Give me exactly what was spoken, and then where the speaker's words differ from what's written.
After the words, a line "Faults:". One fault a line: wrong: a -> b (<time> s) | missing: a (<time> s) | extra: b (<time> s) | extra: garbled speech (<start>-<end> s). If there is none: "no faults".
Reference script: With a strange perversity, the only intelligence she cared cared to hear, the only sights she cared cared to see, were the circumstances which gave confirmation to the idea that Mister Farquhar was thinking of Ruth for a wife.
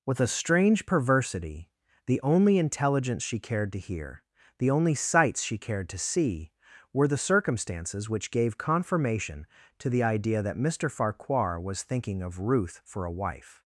With a strange perversity, the only intelligence she cared to hear, the only sights she cared to see, were the circumstances which gave confirmation to the idea that Mister Farquhar was thinking of Ruth for a wife.
Faults:
missing: cared (3.7 s)
missing: cared (5.9 s)